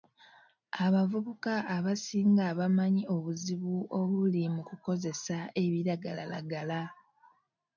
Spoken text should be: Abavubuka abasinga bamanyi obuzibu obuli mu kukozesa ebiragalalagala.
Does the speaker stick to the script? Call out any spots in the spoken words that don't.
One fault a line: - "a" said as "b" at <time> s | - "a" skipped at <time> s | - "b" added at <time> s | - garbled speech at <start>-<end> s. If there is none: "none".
none